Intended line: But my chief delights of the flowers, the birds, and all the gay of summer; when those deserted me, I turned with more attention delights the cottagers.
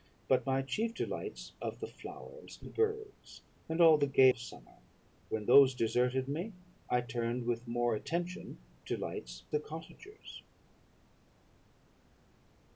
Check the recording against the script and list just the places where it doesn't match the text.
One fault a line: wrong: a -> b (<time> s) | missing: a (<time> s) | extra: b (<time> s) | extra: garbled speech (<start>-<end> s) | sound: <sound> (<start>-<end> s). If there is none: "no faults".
no faults